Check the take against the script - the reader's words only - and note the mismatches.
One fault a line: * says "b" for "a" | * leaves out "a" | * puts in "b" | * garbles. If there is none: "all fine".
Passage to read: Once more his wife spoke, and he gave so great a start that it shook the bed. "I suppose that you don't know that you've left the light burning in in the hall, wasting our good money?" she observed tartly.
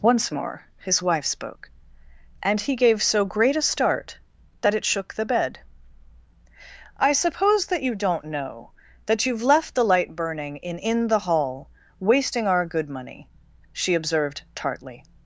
all fine